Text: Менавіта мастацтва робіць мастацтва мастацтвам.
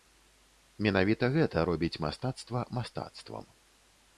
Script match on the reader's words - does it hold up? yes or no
no